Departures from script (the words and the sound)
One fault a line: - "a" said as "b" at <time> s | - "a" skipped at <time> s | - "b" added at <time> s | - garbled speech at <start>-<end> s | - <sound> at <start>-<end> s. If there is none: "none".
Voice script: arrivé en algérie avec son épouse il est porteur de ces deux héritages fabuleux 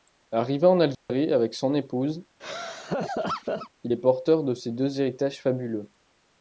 - dropout at 0.9-1.1 s
- laugh at 2.4-3.7 s